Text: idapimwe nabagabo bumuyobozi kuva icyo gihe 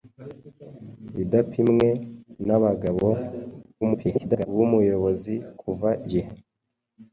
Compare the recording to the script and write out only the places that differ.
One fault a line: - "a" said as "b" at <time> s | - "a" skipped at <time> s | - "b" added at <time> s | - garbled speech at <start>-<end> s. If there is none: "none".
- garbled speech at 3.8-4.5 s
- "icyo" skipped at 5.9 s